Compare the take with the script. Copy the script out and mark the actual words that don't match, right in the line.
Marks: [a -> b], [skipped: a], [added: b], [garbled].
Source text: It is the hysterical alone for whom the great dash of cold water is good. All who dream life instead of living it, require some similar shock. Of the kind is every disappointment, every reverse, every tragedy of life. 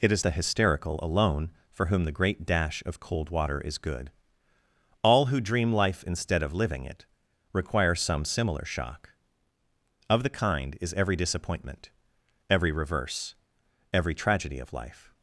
It is the hysterical alone for whom the great dash of cold water is good. All who dream life instead of living it, require some similar shock. Of the kind is every disappointment, every reverse, every tragedy of life.